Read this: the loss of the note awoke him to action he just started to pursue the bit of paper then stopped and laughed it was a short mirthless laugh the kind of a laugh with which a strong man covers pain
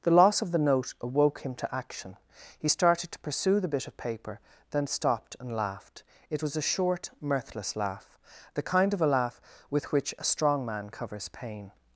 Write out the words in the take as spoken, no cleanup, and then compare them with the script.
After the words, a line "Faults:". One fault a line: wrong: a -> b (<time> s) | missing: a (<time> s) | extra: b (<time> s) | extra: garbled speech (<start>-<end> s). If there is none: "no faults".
the loss of the note awoke him to action he started to pursue the bit of paper then stopped and laughed it was a short mirthless laugh the kind of a laugh with which a strong man covers pain
Faults:
missing: just (2.7 s)